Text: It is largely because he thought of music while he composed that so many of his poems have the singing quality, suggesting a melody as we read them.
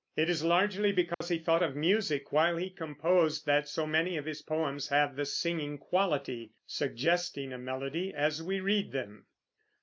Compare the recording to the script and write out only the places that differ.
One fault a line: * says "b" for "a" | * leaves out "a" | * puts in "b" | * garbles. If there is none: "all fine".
all fine